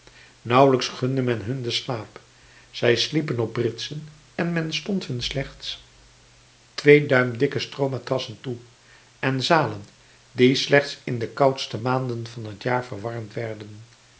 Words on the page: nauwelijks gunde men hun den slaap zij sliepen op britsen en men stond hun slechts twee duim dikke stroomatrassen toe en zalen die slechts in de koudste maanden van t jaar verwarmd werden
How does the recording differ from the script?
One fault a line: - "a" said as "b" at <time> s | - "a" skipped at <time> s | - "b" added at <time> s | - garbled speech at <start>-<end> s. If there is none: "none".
none